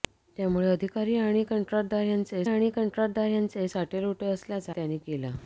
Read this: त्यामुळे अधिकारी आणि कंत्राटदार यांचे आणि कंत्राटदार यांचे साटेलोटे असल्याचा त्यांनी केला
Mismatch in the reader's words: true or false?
false